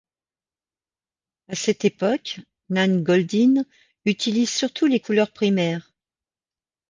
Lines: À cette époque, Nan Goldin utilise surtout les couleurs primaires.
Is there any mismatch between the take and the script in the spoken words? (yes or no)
no